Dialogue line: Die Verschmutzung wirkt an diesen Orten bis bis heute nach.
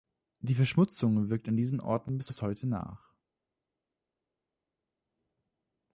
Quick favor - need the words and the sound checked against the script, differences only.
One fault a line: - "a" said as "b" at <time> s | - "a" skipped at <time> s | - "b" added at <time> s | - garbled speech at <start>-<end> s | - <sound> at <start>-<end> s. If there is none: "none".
none